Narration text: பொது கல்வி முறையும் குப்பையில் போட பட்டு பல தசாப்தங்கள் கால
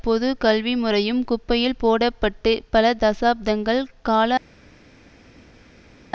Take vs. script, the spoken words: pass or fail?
pass